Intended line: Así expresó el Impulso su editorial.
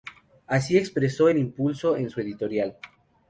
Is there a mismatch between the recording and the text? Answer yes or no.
yes